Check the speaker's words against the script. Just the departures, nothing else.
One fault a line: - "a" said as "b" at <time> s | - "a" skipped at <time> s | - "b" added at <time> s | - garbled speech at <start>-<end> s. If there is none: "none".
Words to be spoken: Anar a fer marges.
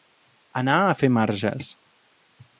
none